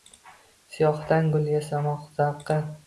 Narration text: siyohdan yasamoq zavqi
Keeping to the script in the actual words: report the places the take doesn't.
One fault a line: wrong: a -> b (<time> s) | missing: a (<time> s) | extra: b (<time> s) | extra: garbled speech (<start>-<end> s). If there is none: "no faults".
extra: gul (1.4 s)